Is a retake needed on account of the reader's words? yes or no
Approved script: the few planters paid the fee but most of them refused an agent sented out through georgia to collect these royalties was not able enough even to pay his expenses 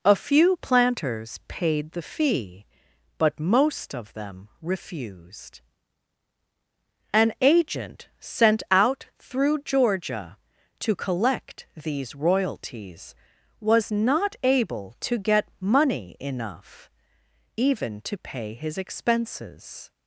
yes